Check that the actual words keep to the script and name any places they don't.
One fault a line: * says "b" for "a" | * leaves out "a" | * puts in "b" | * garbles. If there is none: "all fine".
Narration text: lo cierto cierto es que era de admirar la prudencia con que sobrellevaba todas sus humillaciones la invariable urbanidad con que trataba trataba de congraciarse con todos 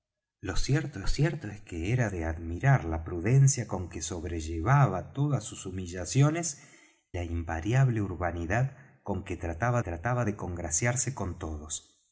all fine